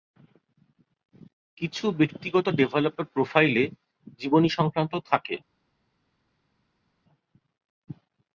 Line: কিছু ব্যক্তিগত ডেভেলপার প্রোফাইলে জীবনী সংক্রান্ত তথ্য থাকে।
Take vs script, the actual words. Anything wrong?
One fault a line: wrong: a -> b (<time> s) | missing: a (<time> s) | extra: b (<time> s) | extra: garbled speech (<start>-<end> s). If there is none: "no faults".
missing: তথ্য (4.9 s)